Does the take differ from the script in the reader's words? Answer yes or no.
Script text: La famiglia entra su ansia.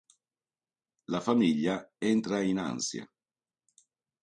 yes